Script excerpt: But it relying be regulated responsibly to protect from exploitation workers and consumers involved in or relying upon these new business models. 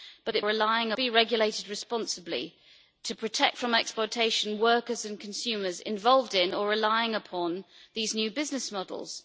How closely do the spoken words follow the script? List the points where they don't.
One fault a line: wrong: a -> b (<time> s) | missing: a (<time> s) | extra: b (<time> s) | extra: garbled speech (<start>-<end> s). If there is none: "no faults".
no faults